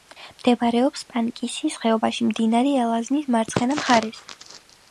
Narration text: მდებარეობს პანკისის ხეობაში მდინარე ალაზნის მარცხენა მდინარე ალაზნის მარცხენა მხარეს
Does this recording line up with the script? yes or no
no